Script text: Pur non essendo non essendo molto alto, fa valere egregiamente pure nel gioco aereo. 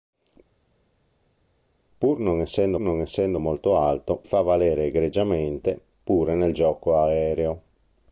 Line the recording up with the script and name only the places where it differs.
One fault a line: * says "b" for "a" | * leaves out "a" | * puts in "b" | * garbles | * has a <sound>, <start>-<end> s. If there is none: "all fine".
all fine